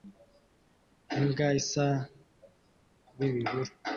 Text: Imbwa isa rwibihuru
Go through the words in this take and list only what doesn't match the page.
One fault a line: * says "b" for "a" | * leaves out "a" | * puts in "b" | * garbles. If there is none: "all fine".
all fine